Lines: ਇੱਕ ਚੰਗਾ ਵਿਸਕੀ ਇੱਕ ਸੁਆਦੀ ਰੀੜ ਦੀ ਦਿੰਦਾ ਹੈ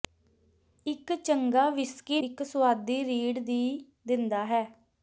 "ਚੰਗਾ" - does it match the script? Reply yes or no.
yes